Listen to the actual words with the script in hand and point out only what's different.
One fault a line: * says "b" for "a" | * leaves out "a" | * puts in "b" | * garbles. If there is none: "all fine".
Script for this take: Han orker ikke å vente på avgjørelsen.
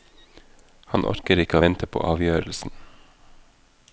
all fine